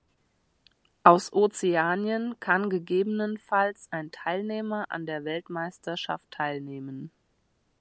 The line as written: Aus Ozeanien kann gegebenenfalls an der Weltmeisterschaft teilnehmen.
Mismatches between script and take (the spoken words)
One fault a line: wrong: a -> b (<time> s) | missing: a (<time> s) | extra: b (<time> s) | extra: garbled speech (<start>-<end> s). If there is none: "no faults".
extra: ein Teilnehmer (3.9 s)